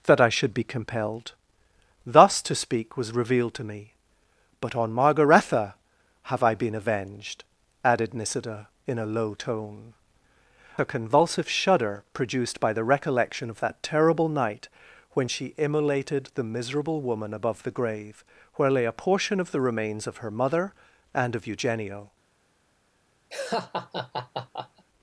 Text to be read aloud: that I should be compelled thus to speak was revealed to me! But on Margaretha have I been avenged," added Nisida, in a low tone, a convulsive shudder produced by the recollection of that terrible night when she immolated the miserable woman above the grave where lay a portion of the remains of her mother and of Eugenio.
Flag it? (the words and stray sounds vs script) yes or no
yes